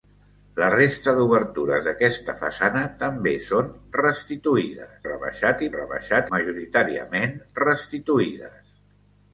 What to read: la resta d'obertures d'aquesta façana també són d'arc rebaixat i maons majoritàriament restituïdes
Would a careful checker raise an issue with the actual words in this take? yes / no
yes